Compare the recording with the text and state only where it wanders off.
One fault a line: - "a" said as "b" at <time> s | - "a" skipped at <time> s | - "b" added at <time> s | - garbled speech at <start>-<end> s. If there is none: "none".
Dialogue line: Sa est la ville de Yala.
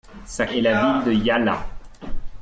none